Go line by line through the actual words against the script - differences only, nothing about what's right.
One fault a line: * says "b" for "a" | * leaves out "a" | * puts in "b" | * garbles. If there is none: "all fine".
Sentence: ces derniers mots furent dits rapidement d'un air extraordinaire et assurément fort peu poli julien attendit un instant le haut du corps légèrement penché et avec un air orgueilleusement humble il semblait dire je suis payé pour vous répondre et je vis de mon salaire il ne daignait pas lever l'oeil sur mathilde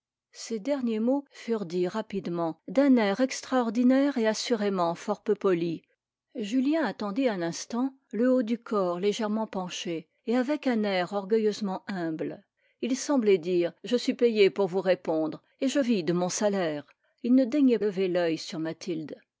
* leaves out "pas"